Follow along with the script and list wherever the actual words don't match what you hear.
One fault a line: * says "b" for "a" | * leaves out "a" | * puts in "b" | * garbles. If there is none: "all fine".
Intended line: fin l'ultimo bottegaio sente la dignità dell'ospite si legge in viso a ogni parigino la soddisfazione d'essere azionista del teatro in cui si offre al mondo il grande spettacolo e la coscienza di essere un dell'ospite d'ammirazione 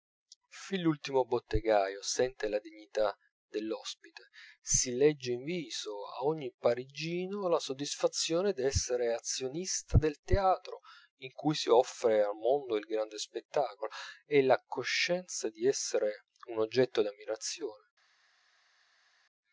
* says "oggetto" for "dell'ospite"